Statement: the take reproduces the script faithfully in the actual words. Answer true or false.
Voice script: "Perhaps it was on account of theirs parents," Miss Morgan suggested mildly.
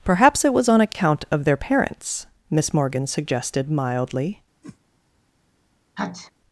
false